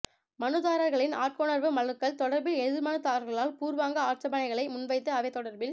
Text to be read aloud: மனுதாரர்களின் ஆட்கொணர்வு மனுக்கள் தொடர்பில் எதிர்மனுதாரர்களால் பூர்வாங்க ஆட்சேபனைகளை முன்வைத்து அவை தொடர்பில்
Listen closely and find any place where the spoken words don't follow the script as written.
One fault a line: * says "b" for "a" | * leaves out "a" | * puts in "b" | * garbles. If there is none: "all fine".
all fine